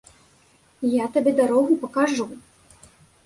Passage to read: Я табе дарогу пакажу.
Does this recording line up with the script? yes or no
yes